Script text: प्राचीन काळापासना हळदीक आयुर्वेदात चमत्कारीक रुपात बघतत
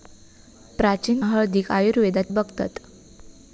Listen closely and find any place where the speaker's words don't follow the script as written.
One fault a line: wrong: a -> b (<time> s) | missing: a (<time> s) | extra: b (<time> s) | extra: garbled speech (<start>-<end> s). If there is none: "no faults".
missing: काळापासना (1.2 s)
missing: चमत्कारीक रुपात (2.3 s)